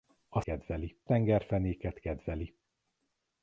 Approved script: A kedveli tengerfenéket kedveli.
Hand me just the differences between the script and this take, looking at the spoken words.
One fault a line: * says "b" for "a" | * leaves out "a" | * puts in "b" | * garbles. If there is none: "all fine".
all fine